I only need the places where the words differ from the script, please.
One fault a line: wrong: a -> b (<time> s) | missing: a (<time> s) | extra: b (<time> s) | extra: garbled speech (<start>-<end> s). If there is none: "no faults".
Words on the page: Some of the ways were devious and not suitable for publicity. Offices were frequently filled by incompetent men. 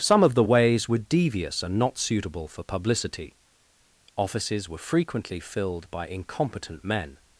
no faults